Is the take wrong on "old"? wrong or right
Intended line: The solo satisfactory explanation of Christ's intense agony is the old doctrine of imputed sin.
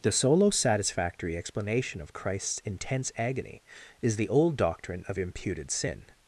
right